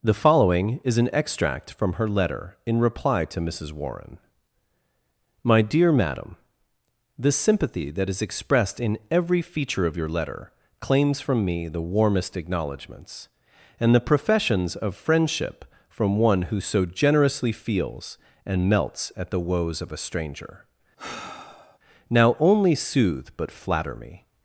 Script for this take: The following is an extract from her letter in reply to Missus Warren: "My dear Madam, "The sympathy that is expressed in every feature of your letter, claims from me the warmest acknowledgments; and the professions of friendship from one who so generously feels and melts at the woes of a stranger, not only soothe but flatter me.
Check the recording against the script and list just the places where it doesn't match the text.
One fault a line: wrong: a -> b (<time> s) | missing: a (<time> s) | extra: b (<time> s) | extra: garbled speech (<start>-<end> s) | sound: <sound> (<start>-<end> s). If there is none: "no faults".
sound: sigh (21.0-21.8 s)
wrong: not -> now (22.1 s)